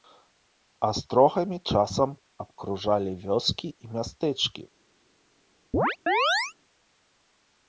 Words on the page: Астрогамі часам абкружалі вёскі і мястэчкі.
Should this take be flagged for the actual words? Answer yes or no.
no